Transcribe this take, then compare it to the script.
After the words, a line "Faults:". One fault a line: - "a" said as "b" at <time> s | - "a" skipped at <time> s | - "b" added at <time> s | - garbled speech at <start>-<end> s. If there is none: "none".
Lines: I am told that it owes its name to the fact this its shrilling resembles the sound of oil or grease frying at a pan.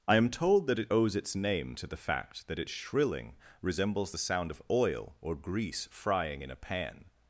I am told that it owes its name to the fact that its shrilling resembles the sound of oil or grease frying in a pan.
Faults:
- "this" said as "that" at 2.5 s
- "at" said as "in" at 6.4 s